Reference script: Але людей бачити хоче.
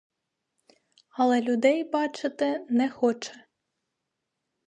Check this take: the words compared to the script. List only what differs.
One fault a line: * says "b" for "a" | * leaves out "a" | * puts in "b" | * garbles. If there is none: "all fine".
* puts in "не"